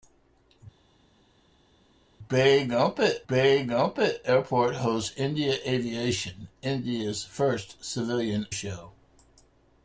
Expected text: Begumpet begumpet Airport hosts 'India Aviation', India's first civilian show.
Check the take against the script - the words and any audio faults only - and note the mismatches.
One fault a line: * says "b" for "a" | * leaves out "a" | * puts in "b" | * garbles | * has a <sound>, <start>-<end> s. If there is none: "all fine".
all fine